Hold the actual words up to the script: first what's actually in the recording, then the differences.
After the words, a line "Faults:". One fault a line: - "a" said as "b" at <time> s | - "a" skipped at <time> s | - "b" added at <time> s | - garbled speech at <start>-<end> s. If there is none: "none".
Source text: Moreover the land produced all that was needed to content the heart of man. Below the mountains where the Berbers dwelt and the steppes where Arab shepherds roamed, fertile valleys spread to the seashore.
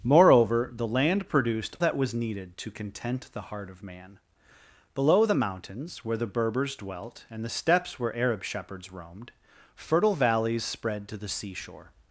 Moreover the land produced that was needed to content the heart of man. Below the mountains where the Berbers dwelt and the steppes where Arab shepherds roamed, fertile valleys spread to the seashore.
Faults:
- "all" skipped at 1.8 s